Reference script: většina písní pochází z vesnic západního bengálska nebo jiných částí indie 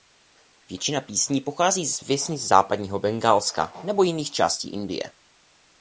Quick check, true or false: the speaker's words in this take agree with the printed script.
true